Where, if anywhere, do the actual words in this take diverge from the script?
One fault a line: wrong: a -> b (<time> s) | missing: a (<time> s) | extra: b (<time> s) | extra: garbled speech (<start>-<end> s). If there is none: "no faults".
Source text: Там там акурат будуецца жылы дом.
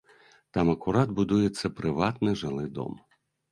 missing: там (0.7 s)
extra: прыватны (1.8 s)